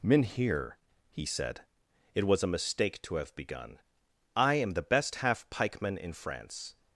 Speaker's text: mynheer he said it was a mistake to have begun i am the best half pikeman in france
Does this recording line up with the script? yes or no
yes